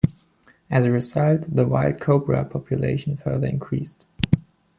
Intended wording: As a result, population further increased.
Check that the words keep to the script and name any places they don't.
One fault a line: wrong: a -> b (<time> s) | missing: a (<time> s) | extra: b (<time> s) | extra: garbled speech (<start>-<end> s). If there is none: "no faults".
extra: the wild cobra (1.6 s)